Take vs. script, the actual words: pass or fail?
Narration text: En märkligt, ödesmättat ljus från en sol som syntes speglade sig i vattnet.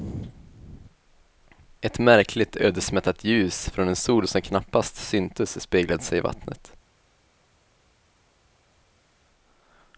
fail